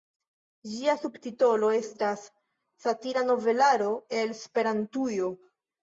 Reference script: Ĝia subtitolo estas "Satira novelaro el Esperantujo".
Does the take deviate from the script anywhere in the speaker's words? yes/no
no